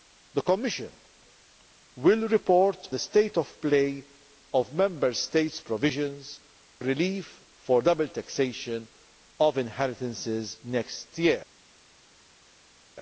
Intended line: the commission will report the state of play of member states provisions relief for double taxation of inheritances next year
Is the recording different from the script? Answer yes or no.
no